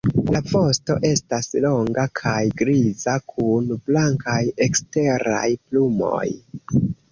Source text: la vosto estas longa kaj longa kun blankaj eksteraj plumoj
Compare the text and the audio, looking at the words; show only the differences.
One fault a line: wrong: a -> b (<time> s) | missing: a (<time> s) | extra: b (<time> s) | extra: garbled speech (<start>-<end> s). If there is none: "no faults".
wrong: longa -> griza (2.6 s)